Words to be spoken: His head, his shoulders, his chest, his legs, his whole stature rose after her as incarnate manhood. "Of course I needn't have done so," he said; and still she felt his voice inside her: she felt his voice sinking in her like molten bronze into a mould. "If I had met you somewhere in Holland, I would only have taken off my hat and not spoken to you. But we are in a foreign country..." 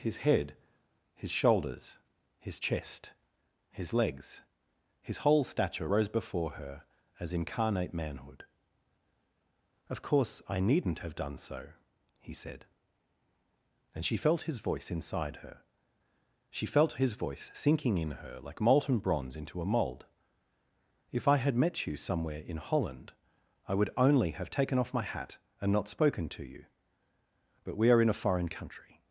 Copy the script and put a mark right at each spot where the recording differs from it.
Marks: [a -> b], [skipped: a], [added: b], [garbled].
His head, his shoulders, his chest, his legs, his whole stature rose [after -> before] her as incarnate manhood. "Of course I needn't have done so," he said; and [skipped: still] she felt his voice inside her: she felt his voice sinking in her like molten bronze into a mould. "If I had met you somewhere in Holland, I would only have taken off my hat and not spoken to you. But we are in a foreign country..."